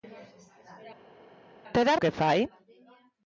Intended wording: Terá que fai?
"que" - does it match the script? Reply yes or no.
yes